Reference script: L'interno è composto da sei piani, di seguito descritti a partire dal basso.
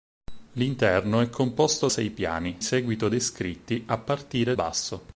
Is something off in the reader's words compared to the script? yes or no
yes